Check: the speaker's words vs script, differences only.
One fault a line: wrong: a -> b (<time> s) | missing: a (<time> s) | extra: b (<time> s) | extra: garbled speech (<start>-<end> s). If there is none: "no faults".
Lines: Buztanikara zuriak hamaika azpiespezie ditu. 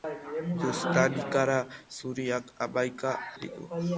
missing: azpiespezie (3.1 s)